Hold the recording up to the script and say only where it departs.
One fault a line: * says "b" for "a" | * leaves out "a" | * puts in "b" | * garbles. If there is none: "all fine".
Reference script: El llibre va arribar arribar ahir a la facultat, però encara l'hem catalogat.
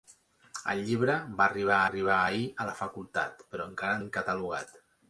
all fine